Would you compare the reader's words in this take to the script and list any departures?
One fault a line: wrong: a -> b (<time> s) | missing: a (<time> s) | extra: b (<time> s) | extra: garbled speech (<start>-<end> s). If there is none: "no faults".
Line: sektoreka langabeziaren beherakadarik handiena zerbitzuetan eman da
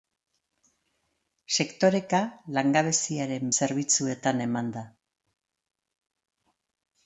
missing: beherakadarik handiena (3.5 s)